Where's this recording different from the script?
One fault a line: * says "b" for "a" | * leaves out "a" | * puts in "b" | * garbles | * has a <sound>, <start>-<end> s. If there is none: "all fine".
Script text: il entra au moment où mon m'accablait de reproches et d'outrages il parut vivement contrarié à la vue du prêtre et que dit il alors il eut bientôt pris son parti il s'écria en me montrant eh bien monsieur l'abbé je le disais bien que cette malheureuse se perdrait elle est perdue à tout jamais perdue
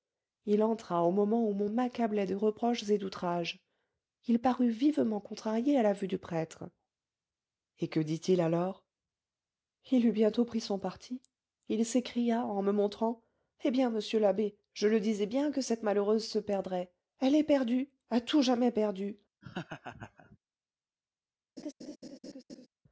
* has a laugh, 19.4-20.4 s
* has a laugh, 21.6-22.7 s